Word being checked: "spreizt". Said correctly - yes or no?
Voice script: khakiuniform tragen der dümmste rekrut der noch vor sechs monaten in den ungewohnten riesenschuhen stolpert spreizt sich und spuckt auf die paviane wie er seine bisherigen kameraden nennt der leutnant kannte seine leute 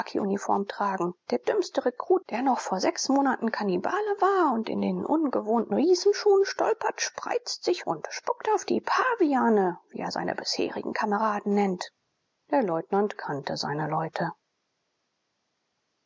yes